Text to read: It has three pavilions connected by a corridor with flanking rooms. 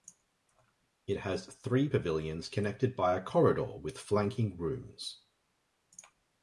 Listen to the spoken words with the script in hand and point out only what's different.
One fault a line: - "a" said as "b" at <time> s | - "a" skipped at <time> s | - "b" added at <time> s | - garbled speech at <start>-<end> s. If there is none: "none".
none